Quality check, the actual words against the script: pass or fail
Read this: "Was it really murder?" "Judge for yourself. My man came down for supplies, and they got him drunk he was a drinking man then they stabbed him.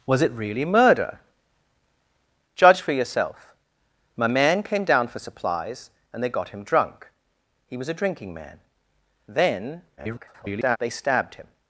fail